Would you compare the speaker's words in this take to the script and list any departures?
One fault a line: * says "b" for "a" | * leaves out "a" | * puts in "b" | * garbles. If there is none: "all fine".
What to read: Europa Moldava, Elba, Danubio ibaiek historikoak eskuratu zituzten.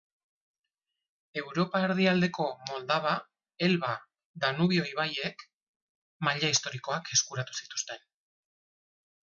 * puts in "erdialdeko"
* puts in "maila"